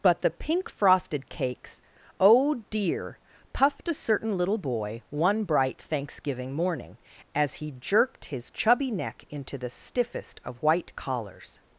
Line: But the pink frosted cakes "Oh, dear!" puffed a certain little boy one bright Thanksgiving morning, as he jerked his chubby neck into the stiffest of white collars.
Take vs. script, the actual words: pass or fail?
pass